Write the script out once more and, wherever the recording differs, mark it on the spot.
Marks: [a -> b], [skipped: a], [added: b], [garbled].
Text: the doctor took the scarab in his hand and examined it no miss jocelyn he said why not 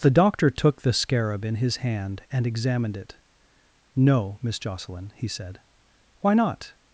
the doctor took the scarab in his hand and examined it no miss jocelyn he said why not